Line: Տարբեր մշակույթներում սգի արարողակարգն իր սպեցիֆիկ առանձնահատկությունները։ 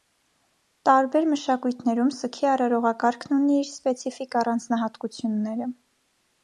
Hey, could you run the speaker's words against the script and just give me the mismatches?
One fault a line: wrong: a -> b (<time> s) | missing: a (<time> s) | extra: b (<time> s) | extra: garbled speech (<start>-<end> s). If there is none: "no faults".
extra: ունի (3.4 s)